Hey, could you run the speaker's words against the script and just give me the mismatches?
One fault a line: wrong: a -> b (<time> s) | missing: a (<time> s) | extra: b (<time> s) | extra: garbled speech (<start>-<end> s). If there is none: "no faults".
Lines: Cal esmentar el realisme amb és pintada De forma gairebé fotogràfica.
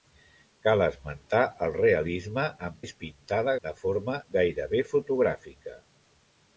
no faults